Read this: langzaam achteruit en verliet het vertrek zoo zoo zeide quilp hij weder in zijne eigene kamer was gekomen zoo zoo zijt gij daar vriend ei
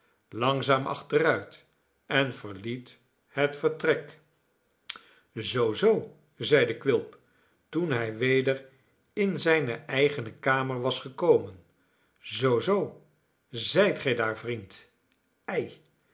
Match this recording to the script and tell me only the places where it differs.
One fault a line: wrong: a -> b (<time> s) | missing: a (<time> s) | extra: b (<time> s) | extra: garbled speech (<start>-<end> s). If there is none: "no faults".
extra: toen (7.7 s)